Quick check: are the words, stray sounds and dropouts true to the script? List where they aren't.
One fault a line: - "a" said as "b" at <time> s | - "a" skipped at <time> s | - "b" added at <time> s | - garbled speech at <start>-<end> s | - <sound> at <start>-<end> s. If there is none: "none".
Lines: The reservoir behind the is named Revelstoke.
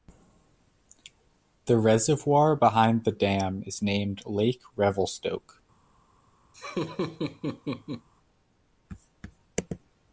- "dam" added at 3.1 s
- "Lake" added at 4.3 s
- laugh at 6.5-8.1 s